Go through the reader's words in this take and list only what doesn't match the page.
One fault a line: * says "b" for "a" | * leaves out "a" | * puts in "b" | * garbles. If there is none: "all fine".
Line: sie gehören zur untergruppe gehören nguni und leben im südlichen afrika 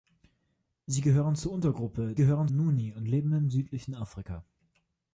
all fine